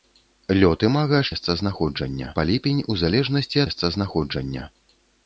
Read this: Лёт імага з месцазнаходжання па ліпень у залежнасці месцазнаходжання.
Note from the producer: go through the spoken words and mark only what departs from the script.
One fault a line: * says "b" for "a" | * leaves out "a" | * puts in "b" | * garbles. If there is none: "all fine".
all fine